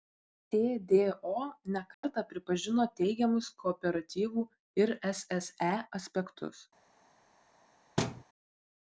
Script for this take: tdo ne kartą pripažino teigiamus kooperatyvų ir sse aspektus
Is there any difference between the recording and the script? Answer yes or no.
no